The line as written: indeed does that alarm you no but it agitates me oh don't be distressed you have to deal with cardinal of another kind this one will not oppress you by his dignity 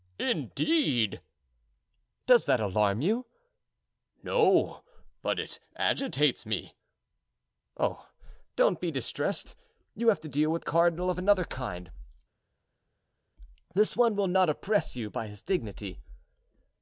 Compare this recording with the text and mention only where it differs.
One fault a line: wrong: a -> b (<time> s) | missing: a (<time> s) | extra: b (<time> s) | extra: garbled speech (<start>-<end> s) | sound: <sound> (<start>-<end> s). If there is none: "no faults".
no faults